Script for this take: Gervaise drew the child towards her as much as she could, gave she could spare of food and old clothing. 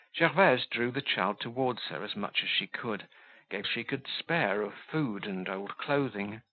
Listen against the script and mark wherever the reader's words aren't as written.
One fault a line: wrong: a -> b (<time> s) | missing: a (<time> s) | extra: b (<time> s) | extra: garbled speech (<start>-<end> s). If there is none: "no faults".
no faults